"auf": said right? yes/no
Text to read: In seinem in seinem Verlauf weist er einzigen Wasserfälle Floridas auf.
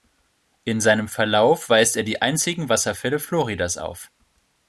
yes